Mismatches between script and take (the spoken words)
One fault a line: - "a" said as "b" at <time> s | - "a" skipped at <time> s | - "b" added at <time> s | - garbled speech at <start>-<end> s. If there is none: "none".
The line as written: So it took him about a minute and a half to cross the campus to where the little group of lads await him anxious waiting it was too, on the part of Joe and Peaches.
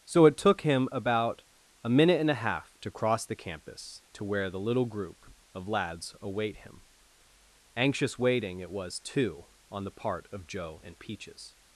none